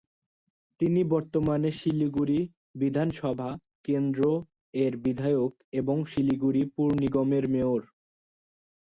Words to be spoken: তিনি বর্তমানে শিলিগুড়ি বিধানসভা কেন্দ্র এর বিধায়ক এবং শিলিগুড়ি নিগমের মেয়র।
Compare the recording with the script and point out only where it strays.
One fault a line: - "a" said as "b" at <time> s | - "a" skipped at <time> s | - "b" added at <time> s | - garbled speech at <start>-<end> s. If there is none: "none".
- "পুর" added at 6.8 s